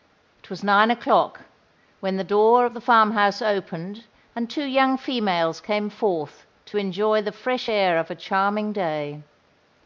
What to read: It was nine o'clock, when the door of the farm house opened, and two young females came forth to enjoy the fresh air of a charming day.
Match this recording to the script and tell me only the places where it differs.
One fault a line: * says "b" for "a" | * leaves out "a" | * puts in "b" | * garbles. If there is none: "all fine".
all fine